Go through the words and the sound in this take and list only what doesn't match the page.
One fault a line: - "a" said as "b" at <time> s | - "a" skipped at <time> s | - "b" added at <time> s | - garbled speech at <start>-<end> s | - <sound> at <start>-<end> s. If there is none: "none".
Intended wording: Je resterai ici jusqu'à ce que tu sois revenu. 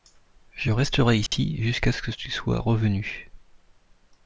- dropout at 1.3-1.3 s